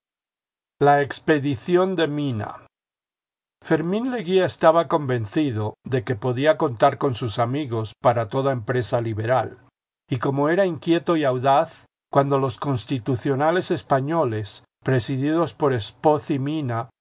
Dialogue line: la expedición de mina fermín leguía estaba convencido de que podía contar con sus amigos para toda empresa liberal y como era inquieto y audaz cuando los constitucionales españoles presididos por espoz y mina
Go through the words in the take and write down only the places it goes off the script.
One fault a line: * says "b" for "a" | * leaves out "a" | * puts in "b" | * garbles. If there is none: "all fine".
all fine